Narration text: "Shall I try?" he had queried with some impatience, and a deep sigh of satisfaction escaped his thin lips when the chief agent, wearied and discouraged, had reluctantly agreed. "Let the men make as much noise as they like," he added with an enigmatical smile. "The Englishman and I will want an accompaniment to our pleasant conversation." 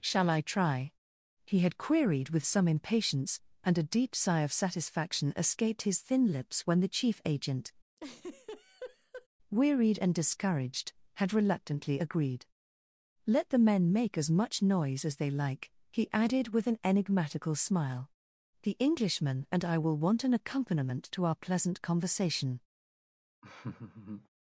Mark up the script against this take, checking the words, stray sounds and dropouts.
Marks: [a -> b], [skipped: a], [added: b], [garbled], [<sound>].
"Shall I try?" he had queried with some impatience, and a deep sigh of satisfaction escaped his thin lips when the chief agent, [laugh] wearied and discouraged, had reluctantly agreed. "Let the men make as much noise as they like," he added with an enigmatical smile. "The Englishman and I will want an accompaniment to our pleasant conversation." [laugh]